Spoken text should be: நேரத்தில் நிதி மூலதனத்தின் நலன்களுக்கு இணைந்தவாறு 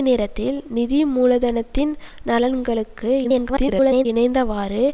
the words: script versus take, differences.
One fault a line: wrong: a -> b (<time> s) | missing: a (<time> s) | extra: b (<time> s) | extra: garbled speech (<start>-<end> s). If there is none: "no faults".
extra: garbled speech (3.2-4.1 s)